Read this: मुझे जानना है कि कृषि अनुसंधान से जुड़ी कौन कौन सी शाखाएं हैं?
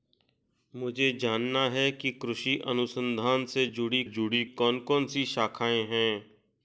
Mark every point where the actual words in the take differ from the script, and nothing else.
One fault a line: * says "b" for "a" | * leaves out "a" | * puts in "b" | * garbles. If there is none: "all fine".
* puts in "जुड़ी"